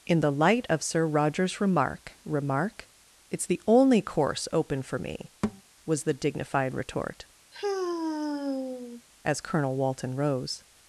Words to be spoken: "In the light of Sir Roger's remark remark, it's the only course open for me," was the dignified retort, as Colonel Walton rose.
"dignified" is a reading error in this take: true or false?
false